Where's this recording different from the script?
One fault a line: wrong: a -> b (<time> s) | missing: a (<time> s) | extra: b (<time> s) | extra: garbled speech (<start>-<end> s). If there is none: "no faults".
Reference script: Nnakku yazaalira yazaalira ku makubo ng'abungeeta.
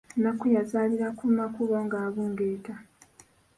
missing: yazaalira (1.1 s)